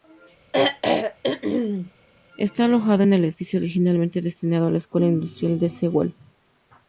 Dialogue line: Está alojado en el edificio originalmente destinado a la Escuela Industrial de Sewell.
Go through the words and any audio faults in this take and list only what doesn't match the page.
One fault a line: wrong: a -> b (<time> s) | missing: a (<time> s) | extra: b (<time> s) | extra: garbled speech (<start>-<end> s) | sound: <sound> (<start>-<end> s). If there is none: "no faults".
sound: throat clearing (0.5-1.9 s)